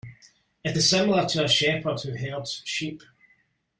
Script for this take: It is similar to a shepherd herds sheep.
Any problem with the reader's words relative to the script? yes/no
yes